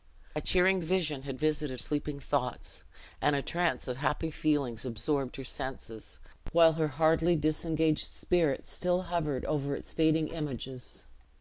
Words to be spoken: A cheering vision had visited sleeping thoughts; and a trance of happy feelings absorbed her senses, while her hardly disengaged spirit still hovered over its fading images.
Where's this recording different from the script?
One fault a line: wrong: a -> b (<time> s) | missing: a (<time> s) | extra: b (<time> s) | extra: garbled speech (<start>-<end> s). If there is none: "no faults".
no faults